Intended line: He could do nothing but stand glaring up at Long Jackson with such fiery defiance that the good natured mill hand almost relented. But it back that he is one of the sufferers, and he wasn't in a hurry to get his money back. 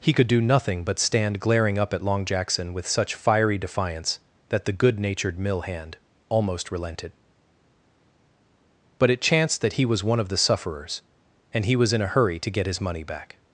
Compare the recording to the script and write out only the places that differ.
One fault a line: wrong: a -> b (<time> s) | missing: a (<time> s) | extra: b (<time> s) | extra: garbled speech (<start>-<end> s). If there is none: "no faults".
wrong: back -> chanced (9.2 s)
wrong: is -> was (9.9 s)
wrong: wasn't -> was (11.7 s)